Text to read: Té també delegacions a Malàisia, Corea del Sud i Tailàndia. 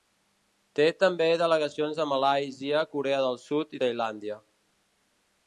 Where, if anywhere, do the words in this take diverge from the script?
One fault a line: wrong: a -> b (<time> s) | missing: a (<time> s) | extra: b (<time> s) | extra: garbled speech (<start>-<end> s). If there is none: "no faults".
no faults